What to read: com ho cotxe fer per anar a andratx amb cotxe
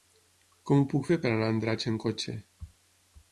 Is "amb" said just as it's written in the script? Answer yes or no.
yes